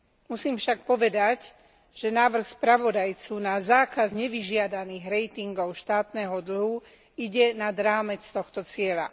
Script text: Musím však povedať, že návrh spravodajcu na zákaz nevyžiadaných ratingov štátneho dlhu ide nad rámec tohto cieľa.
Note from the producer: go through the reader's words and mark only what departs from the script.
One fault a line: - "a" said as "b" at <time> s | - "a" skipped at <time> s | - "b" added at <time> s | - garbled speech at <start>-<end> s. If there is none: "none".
none